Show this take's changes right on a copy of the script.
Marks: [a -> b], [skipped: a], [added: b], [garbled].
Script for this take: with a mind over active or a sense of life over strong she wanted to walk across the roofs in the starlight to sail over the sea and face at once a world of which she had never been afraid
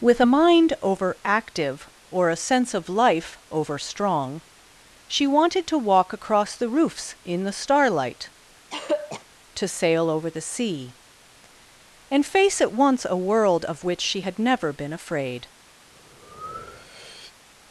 with a mind over active or a sense of life over strong she wanted to walk across the roofs in the starlight to sail over the sea and face at once a world of which she had never been afraid